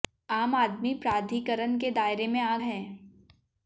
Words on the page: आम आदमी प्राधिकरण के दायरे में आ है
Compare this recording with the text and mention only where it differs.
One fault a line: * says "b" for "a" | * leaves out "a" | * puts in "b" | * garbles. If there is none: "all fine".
all fine